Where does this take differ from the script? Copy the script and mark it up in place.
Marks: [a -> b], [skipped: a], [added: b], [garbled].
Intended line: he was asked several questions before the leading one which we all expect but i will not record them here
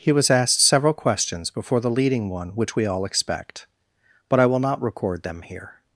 he was asked several questions before the leading one which we all expect but i will not record them here